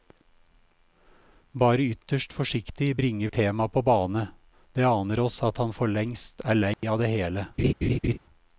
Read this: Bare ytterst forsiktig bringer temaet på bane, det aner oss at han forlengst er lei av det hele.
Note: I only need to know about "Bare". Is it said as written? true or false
true